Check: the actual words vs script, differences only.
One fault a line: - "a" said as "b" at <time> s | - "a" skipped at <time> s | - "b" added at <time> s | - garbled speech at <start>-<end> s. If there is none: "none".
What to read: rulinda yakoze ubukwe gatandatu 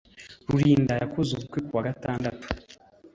- "kuwa" added at 1.7 s